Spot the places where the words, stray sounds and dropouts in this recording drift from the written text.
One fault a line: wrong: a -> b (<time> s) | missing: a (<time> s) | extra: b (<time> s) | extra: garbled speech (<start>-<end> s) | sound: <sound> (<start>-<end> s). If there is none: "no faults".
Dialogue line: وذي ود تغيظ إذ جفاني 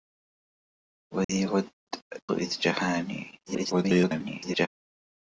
sound: dropout (1.2-1.3 s)
missing: تغيظ (1.7 s)
extra: garbled speech (3.5-4.7 s)